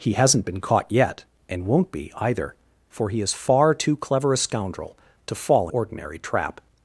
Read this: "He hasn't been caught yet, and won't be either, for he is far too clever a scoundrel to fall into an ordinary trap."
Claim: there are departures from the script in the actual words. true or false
true